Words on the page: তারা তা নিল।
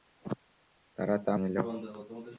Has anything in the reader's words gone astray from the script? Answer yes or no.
no